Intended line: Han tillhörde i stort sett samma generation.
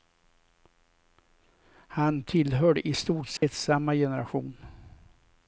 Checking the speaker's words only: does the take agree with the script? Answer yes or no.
yes